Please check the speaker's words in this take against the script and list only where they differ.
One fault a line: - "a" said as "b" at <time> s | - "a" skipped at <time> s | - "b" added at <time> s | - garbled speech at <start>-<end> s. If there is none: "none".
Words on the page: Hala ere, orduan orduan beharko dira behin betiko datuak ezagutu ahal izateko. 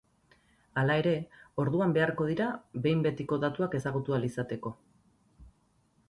- "orduan" skipped at 1.9 s